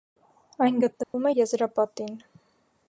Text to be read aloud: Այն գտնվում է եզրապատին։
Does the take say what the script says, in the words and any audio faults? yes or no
no